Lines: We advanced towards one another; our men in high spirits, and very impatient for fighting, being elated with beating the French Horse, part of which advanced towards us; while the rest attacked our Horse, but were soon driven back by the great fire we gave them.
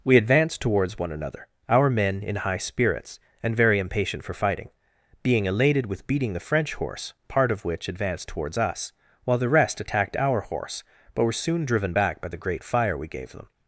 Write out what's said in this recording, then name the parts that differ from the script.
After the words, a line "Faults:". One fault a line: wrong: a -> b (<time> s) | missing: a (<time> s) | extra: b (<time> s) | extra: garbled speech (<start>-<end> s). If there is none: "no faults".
We advanced towards one another; our men in high spirits, and very impatient for fighting, being elated with beating the French Horse, part of which advanced towards us; while the rest attacked our Horse, but were soon driven back by the great fire we gave them.
Faults:
no faults